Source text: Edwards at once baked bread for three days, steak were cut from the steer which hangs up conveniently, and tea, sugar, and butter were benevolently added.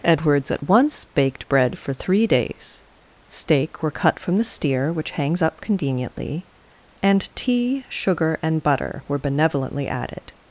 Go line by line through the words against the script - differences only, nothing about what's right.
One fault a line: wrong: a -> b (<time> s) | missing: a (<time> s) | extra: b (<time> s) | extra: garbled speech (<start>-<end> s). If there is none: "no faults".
no faults